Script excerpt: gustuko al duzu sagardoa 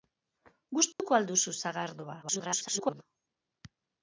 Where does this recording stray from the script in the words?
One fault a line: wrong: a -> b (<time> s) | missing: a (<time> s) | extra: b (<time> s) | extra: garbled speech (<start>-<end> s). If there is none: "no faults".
extra: garbled speech (2.2-3.0 s)